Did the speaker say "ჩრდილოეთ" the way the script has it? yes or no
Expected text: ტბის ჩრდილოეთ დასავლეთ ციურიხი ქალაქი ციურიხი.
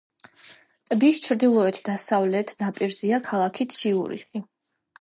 yes